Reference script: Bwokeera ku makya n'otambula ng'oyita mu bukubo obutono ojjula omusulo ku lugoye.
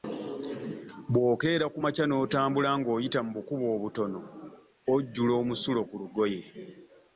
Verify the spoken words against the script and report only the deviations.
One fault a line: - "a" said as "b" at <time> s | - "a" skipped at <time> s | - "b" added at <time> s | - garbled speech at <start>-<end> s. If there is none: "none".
none